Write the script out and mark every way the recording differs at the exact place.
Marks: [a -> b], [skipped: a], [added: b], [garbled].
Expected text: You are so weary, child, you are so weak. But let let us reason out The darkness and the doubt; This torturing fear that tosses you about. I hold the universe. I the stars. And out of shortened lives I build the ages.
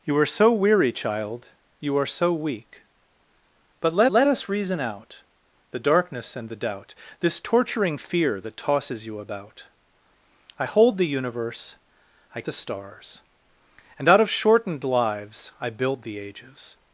You are so weary, child, you are so weak. But let let us reason out The darkness and the doubt; This torturing fear that tosses you about. I hold the universe. I the stars. And out of shortened lives I build the ages.